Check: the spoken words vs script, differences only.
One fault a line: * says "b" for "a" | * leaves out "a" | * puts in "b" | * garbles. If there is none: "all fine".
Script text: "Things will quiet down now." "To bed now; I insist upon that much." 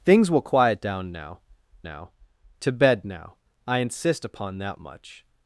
* puts in "now"